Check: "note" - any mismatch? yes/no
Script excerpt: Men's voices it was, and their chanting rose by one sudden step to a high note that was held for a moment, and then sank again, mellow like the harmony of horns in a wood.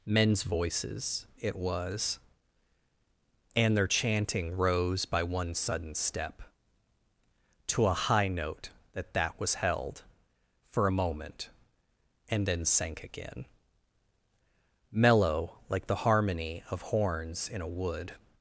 no